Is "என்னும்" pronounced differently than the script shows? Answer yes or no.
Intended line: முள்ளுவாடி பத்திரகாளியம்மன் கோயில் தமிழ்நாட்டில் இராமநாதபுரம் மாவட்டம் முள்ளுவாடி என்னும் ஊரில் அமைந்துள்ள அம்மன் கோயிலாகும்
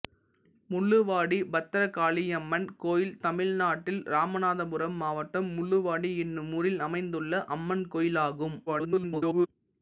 no